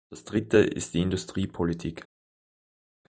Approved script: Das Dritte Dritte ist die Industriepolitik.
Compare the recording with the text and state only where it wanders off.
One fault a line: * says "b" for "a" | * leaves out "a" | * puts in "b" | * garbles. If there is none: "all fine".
* leaves out "Dritte"